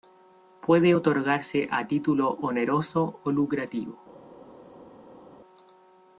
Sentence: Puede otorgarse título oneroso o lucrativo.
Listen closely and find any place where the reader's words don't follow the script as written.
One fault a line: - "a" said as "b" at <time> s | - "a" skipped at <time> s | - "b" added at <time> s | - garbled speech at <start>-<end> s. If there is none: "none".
- "a" added at 1.7 s